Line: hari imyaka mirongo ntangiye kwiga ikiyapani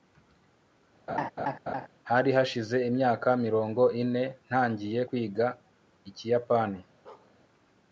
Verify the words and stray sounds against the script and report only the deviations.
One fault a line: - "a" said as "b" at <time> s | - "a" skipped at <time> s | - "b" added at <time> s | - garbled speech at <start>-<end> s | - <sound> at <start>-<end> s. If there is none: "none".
- laugh at 1.1-1.9 s
- "hashize" added at 2.4 s
- "ine" added at 4.0 s
- bark at 7.0-7.3 s